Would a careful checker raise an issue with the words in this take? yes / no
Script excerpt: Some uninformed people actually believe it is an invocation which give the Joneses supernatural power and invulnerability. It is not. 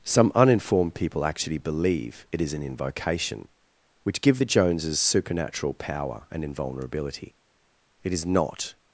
no